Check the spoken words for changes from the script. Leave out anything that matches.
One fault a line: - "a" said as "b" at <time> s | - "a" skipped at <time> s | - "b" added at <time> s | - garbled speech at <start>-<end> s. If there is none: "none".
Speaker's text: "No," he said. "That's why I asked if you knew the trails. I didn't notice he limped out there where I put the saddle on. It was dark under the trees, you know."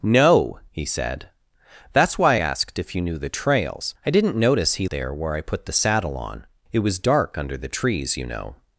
- "I" skipped at 2.4 s
- "limped out" skipped at 4.9 s